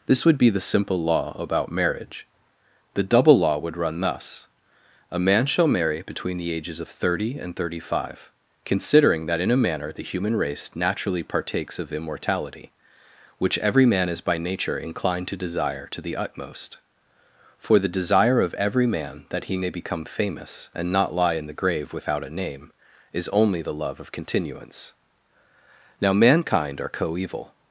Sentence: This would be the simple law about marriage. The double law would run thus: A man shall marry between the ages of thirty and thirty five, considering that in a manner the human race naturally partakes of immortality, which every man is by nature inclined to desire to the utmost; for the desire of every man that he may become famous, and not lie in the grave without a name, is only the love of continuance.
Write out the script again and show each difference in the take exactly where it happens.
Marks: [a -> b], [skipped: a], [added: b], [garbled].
This would be the simple law about marriage. The double law would run thus: A man shall marry between the ages of thirty and thirty five, considering that in a manner the human race naturally partakes of immortality, which every man is by nature inclined to desire to the utmost; for the desire of every man that he may become famous, and not lie in the grave without a name, is only the love of continuance. [added: Now mankind are coeval]